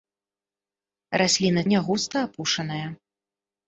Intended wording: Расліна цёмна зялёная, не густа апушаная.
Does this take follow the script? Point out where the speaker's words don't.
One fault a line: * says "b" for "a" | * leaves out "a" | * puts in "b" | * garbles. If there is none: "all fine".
* leaves out "цёмна зялёная"